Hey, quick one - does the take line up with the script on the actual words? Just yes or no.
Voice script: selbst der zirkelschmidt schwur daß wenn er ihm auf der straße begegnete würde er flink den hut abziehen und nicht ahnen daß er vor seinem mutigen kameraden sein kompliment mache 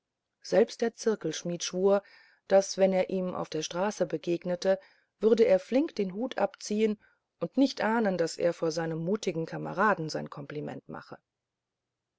yes